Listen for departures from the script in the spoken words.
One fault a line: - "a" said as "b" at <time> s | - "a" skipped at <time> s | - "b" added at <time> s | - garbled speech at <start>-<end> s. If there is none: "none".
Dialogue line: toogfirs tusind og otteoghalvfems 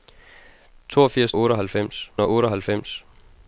- "tusind" said as "otteoghalvfems" at 1.4 s